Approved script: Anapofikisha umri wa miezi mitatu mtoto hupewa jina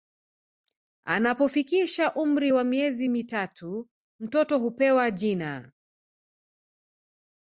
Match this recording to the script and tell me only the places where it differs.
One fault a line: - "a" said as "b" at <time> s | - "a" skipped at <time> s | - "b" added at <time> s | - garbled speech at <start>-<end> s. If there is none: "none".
none